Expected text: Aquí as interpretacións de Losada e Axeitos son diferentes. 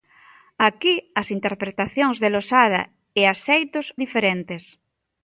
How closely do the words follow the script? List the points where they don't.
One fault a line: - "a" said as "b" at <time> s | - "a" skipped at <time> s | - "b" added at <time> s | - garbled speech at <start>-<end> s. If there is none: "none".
- "son" skipped at 3.9 s